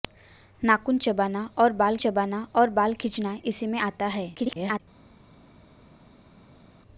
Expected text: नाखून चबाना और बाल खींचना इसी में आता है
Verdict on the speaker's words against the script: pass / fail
fail